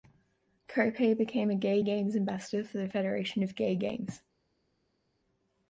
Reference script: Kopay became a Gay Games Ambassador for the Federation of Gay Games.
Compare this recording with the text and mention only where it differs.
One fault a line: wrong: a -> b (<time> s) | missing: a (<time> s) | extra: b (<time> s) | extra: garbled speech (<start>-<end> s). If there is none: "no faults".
no faults